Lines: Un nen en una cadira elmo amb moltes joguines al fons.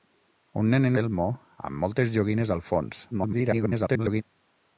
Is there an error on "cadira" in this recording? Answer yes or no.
yes